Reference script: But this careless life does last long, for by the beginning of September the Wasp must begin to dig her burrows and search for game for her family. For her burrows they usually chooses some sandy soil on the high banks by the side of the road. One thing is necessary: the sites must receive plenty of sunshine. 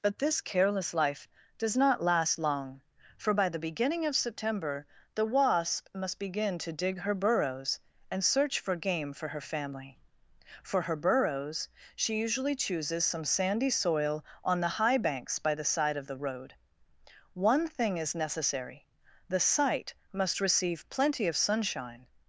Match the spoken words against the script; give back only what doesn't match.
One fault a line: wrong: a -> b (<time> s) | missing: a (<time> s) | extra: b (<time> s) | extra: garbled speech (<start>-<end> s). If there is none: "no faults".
extra: not (1.8 s)
wrong: they -> she (11.9 s)
wrong: sites -> site (19.4 s)